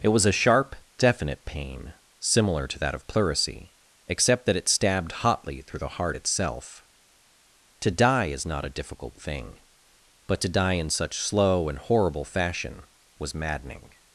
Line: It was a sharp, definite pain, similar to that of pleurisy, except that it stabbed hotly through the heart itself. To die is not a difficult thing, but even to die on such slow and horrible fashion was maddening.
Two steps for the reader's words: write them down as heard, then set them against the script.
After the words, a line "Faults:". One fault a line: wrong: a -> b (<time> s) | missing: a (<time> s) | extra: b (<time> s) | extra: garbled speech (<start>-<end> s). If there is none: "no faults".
It was a sharp, definite pain, similar to that of pleurisy, except that it stabbed hotly through the heart itself. To die is not a difficult thing, but to die in such slow and horrible fashion was maddening.
Faults:
missing: even (10.4 s)
wrong: on -> in (10.7 s)